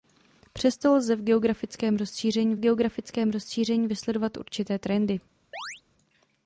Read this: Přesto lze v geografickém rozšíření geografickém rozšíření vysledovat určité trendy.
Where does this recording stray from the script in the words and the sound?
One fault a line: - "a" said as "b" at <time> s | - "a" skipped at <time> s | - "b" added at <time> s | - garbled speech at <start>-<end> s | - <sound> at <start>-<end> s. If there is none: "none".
- chirp at 5.5-5.8 s